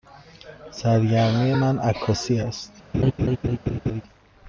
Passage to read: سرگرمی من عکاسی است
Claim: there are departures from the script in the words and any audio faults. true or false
true